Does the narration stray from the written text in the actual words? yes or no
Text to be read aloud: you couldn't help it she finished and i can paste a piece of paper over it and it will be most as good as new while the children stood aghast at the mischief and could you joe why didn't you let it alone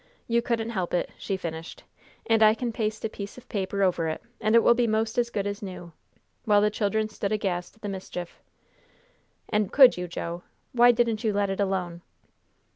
no